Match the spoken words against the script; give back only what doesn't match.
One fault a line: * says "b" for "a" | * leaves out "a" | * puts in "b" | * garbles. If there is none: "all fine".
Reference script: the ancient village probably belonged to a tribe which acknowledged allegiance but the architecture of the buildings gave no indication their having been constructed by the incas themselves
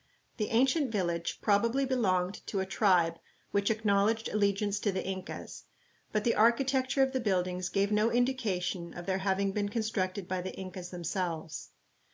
* puts in "to the incas"
* puts in "of"